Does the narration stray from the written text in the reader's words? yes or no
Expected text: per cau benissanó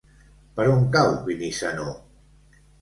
yes